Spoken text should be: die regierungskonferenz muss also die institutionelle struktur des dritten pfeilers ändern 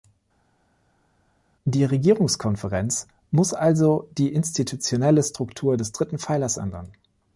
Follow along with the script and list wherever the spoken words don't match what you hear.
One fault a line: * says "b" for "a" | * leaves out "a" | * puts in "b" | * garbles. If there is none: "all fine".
all fine